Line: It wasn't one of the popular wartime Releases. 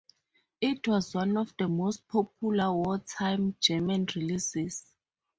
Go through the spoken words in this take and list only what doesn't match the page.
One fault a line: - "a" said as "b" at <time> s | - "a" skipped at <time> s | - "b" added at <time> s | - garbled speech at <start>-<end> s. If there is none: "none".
- "wasn't" said as "was" at 0.9 s
- "most" added at 1.7 s
- "German" added at 3.6 s